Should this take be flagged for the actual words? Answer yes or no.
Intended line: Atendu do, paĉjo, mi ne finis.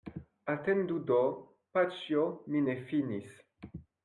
no